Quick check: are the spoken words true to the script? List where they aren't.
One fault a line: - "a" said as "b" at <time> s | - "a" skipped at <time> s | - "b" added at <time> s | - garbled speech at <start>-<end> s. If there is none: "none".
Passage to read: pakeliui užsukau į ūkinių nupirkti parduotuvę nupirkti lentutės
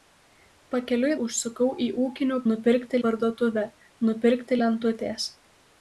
none